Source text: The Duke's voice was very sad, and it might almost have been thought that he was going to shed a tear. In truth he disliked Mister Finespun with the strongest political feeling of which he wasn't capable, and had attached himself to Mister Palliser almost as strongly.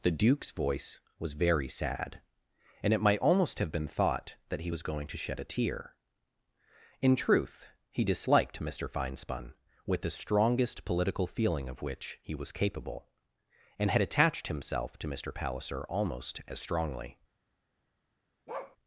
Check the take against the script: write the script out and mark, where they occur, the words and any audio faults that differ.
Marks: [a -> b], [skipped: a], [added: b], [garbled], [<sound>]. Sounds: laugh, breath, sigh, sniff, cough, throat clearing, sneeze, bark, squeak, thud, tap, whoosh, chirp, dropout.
The Duke's voice was very sad, and it might almost have been thought that he was going to shed a tear. In truth he disliked Mister Finespun with the strongest political feeling of which he [wasn't -> was] capable, and had attached himself to Mister Palliser almost as strongly. [bark]